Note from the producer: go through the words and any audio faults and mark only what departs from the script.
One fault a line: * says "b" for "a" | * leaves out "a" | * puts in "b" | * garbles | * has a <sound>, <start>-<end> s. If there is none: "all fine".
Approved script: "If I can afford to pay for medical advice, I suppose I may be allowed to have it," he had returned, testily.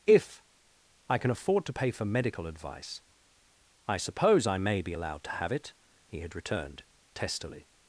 all fine